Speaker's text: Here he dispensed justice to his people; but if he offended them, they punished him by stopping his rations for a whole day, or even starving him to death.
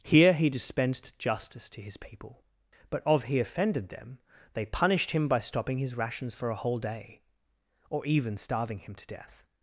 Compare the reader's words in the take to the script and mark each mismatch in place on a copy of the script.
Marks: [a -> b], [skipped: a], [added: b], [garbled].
Here he dispensed justice to his people; but [if -> of] he offended them, they punished him by stopping his rations for a whole day, or even starving him to death.